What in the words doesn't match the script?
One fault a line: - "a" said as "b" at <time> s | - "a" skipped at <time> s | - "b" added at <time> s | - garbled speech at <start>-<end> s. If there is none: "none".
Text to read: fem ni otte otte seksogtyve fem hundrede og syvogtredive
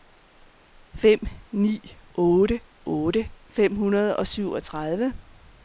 - "seksogtyve" skipped at 3.3 s